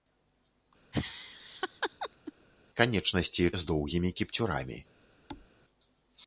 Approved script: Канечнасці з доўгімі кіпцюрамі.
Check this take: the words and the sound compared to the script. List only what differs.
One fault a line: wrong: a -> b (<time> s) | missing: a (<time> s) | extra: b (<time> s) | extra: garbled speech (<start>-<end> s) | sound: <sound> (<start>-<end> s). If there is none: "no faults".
sound: laugh (0.9-2.3 s)
sound: thud (5.3-5.5 s)